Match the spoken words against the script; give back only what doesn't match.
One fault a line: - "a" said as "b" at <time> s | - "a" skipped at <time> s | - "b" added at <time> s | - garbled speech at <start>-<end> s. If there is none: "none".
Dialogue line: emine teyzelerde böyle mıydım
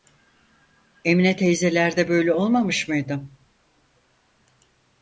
- "olmamış" added at 2.3 s